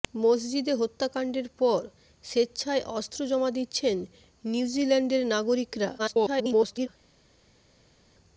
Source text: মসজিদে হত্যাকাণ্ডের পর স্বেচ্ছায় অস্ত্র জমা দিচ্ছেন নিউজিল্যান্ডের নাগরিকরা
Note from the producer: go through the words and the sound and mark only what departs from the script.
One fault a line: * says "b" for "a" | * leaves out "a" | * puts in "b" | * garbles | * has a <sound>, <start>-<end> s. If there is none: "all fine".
* garbles